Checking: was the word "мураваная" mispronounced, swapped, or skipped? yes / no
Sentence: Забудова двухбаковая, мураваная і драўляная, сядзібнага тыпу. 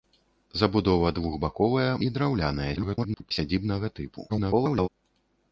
yes